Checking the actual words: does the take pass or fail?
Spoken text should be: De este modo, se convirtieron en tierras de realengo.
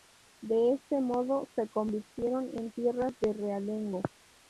pass